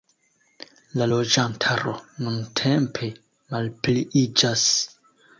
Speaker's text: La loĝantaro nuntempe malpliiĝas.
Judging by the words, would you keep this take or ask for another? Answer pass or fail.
pass